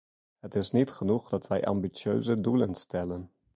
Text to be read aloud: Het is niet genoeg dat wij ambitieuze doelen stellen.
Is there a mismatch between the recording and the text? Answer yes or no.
no